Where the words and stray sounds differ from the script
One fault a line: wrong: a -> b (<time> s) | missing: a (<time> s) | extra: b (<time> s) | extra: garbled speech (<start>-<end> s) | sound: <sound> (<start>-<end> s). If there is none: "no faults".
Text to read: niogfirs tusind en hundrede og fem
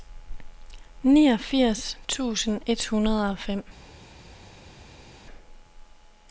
wrong: en -> et (2.7 s)